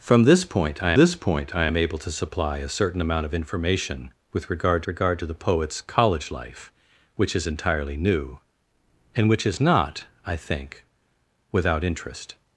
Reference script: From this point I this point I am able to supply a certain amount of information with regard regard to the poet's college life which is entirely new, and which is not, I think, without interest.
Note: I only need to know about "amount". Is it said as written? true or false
true